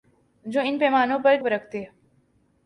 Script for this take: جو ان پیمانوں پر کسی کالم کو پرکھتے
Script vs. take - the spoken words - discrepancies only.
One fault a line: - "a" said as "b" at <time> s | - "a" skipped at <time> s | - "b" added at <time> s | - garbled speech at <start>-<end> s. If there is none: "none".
- "کسی کالم کو" skipped at 1.4 s